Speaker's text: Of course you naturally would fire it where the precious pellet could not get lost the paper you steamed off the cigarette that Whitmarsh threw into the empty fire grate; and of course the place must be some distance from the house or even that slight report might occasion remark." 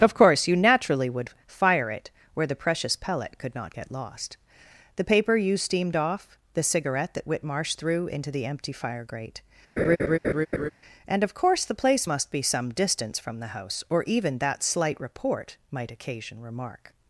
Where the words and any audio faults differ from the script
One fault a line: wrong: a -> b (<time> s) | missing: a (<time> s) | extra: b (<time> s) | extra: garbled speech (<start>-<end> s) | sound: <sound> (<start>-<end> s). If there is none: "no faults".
sound: laugh (9.8-10.7 s)